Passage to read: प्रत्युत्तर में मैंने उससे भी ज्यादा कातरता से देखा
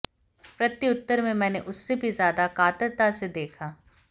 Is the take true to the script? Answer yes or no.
yes